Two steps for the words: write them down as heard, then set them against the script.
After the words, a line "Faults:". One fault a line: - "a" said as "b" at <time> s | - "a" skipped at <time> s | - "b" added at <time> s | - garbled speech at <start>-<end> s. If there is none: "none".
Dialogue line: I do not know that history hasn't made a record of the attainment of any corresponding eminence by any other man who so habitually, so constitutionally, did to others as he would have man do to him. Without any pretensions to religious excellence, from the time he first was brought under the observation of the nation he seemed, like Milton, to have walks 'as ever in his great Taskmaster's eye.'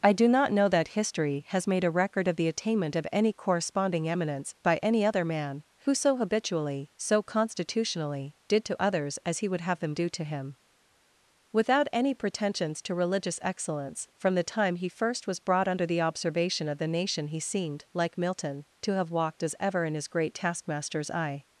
I do not know that history has made a record of the attainment of any corresponding eminence by any other man who so habitually, so constitutionally, did to others as he would have them do to him. Without any pretensions to religious excellence, from the time he first was brought under the observation of the nation he seemed, like Milton, to have walked 'as ever in his great Taskmaster's eye.'
Faults:
- "hasn't" said as "has" at 1.5 s
- "man" said as "them" at 9.8 s
- "walks" said as "walked" at 19.1 s